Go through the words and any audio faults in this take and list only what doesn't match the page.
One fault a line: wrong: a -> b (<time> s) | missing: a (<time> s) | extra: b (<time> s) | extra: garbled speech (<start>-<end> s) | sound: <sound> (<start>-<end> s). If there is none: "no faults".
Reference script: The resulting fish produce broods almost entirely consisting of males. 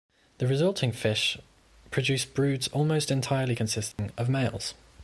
sound: dropout (3.9-4.0 s)